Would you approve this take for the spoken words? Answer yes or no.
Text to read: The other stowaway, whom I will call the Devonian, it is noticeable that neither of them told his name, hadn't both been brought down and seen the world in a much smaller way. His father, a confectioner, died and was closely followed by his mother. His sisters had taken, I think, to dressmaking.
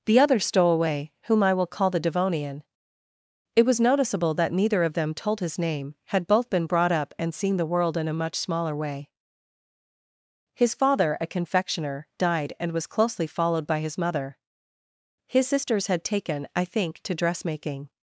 no